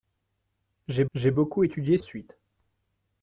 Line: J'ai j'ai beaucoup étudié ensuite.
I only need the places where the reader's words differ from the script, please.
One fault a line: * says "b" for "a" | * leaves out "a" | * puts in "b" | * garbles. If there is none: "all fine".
all fine